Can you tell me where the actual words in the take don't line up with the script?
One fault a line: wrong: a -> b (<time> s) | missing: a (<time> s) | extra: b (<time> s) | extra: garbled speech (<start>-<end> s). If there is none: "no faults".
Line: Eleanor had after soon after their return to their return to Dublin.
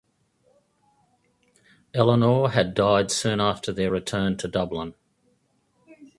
wrong: after -> died (2.7 s)
missing: their return to (4.5 s)